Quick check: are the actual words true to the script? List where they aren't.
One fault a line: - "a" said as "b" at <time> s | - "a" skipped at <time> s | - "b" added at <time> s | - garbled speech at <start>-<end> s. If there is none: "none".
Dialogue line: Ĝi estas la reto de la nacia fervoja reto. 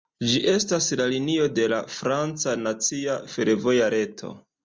- "reto" said as "linio" at 1.1 s
- "franca" added at 2.0 s